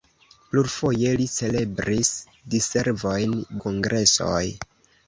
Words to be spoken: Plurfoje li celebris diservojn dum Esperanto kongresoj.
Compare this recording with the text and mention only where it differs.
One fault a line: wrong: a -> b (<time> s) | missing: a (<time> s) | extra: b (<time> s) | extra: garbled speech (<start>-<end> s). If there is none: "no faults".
missing: dum Esperanto (3.4 s)